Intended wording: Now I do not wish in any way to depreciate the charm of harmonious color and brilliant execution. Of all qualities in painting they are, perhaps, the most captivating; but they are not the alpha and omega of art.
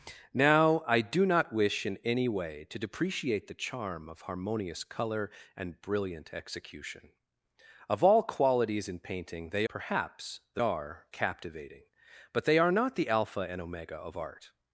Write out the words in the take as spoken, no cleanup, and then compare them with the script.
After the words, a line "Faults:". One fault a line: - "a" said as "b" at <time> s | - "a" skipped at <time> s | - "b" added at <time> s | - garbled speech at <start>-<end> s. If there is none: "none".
Now I do not wish in any way to depreciate the charm of harmonious color and brilliant execution. Of all qualities in painting they perhaps, the are captivating; but they are not the alpha and omega of art.
Faults:
- "are" skipped at 9.7 s
- "most" said as "are" at 10.6 s